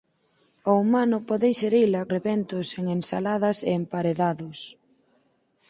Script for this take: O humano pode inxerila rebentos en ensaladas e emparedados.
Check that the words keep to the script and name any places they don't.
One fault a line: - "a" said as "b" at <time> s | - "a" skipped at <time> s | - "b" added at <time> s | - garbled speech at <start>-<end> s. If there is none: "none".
none